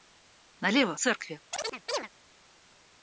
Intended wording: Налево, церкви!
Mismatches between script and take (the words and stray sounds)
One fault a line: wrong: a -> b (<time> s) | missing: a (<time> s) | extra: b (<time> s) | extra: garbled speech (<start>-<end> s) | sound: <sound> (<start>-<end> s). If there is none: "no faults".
sound: chirp (1.5-2.1 s)